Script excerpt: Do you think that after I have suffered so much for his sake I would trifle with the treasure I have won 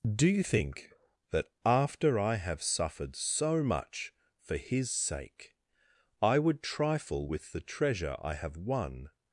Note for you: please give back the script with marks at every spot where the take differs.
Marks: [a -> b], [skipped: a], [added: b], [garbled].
Do you think that after I have suffered so much for his sake I would trifle with the treasure I have won